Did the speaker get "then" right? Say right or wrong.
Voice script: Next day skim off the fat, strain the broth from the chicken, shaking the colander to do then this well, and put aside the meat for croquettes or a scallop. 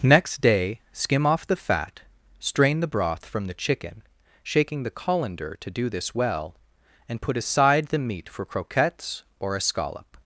wrong